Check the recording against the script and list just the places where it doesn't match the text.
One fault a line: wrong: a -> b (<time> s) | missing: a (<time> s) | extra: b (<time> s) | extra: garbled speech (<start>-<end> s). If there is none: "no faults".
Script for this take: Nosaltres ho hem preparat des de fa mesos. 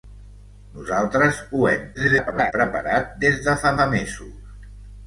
extra: garbled speech (1.9-2.5 s)
extra: fa (3.8 s)